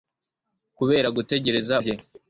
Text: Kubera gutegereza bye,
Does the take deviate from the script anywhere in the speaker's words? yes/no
no